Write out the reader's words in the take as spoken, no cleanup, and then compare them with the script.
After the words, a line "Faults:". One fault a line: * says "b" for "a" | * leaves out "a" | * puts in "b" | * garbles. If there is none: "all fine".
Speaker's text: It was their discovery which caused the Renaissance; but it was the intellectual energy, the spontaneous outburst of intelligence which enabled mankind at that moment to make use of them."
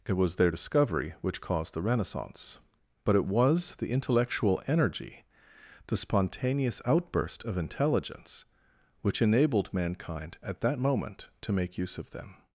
It was their discovery which caused the Renaissance; but it was the intellectual energy, the spontaneous outburst of intelligence which enabled mankind at that moment to make use of them."
Faults:
all fine